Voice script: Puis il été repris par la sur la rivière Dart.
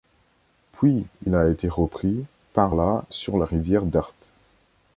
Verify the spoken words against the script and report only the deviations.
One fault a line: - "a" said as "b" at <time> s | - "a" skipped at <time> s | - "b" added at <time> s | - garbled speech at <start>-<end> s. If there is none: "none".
- "a" added at 1.4 s